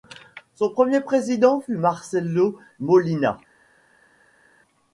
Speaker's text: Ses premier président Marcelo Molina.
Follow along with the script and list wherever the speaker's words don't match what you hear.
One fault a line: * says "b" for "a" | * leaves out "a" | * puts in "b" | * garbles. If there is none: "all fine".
* says "Son" for "Ses"
* puts in "fut"